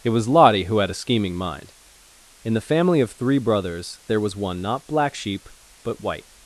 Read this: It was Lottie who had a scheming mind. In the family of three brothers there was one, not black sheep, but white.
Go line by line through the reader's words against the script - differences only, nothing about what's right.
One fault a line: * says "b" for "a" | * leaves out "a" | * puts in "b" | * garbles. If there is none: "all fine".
all fine